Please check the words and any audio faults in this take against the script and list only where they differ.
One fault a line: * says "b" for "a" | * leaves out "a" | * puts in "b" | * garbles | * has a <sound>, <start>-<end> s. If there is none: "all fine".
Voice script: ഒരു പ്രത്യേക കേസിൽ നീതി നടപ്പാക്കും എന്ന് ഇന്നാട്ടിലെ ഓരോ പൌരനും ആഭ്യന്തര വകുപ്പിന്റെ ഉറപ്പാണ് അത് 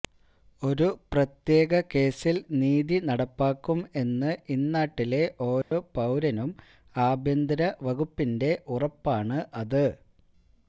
* has a dropout, 5.6-5.7 s